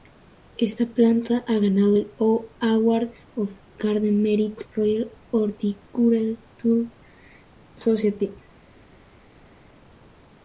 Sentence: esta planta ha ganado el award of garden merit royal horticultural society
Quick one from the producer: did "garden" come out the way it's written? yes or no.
yes